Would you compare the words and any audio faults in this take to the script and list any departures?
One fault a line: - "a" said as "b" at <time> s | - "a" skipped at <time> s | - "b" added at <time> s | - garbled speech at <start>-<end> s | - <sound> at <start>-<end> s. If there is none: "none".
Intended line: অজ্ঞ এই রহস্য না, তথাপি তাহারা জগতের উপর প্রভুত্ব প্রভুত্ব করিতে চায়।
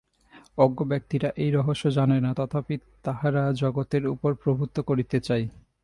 - "ব্যক্তিরা" added at 0.8 s
- "জানে" added at 1.9 s
- "প্রভুত্ব" skipped at 4.8 s